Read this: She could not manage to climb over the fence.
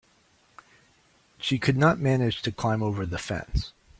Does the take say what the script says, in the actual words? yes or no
yes